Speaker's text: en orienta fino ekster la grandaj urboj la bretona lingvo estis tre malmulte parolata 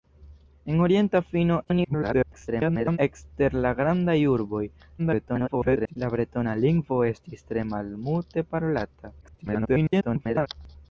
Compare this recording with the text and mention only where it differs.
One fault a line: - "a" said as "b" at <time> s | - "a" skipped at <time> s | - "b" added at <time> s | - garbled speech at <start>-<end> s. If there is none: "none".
- garbled speech at 1.6-3.0 s
- garbled speech at 5.0-6.0 s
- garbled speech at 9.2-10.5 s